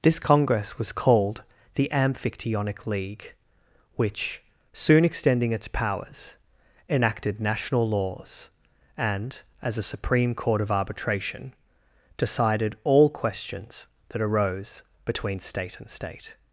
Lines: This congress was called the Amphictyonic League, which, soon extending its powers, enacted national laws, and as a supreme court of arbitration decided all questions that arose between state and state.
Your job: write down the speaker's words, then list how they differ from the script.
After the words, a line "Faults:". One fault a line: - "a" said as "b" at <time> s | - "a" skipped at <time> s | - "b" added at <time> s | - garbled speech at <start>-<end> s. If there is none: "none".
This congress was called the Amphictyonic League, which, soon extending its powers, enacted national laws, and as a supreme court of arbitration decided all questions that arose between state and state.
Faults:
none